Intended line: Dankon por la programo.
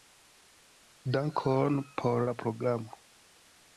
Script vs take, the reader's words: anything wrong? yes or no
no